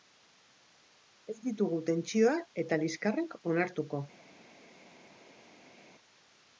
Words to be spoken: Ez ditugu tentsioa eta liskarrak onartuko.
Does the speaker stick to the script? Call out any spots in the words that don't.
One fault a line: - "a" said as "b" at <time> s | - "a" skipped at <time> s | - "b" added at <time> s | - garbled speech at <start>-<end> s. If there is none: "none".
none